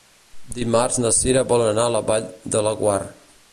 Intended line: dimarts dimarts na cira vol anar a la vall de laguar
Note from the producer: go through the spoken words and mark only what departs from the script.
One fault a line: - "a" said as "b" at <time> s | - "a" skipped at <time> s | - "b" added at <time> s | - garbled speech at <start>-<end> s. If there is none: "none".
- "dimarts" skipped at 1.0 s